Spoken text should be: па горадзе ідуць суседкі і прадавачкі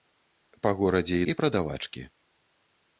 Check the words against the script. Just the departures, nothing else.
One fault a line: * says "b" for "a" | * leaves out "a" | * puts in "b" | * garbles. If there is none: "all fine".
* leaves out "ідуць суседкі"